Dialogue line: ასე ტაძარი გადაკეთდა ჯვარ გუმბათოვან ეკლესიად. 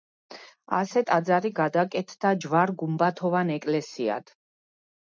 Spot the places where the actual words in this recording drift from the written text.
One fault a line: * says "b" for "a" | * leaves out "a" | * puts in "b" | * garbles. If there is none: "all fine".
all fine